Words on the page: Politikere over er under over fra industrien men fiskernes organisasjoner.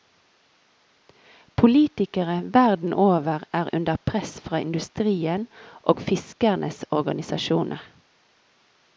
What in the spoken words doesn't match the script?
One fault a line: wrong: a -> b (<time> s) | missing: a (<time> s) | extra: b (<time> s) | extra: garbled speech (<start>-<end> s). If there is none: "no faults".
extra: verden (2.5 s)
wrong: over -> press (4.0 s)
wrong: men -> og (5.8 s)